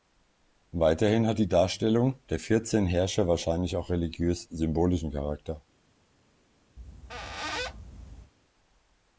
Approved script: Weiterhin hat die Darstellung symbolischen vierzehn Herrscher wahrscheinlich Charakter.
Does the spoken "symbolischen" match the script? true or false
false